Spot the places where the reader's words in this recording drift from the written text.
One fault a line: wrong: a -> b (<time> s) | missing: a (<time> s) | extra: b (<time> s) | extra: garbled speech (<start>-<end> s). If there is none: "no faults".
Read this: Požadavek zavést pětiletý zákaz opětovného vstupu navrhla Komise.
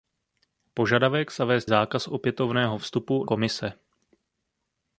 missing: pětiletý (1.6 s)
missing: navrhla (3.3 s)